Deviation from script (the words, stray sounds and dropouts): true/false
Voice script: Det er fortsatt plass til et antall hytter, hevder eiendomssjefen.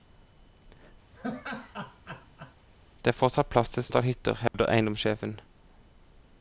true